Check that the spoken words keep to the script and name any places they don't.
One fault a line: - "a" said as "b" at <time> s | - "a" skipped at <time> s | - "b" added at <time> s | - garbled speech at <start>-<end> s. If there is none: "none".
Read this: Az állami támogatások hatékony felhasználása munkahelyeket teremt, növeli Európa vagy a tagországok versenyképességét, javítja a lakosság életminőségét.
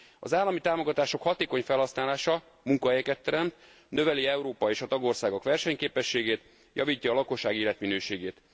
- "vagy" said as "és" at 4.7 s